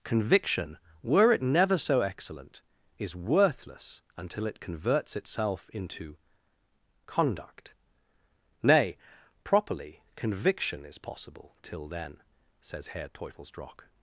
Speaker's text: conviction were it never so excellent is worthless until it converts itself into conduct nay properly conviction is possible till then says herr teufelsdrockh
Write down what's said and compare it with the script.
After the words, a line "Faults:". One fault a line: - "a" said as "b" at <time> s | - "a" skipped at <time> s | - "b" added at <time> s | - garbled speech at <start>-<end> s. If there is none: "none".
conviction were it never so excellent is worthless until it converts itself into conduct nay properly conviction is possible till then says herr teufelsdrockh
Faults:
none